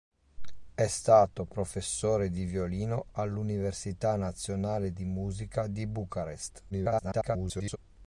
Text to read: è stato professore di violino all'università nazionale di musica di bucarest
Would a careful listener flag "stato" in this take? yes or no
no